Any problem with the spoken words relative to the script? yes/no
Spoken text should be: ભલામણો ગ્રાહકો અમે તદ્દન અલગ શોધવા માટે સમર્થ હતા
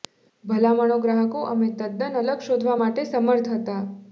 no